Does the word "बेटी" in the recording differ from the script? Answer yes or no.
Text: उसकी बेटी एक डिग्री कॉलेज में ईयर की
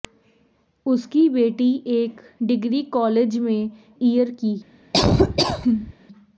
no